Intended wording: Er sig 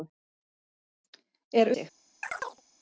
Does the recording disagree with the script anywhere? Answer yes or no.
no